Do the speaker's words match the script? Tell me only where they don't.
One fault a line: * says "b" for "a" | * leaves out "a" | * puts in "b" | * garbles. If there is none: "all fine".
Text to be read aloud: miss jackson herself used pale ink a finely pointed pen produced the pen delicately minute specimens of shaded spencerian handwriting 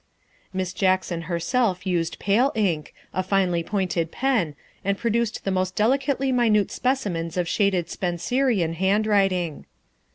* puts in "and"
* says "most" for "pen"